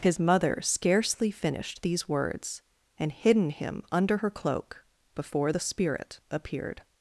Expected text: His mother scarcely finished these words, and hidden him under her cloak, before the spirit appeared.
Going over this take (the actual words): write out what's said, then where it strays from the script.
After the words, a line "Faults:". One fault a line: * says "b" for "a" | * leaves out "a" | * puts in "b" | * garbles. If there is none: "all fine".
His mother scarcely finished these words, and hidden him under her cloak, before the spirit appeared.
Faults:
all fine